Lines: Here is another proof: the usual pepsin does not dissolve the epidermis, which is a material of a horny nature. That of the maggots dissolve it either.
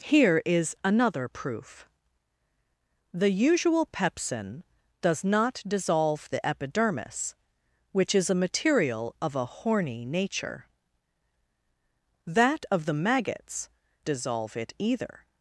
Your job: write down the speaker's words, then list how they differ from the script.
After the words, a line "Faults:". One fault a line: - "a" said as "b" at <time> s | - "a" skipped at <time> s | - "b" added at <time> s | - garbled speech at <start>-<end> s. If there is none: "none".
Here is another proof: the usual pepsin does not dissolve the epidermis, which is a material of a horny nature. That of the maggots dissolve it either.
Faults:
none